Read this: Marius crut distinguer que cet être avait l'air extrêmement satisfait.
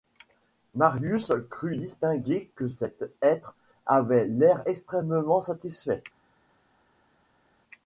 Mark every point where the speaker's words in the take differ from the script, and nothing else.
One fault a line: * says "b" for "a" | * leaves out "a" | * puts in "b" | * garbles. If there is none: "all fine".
all fine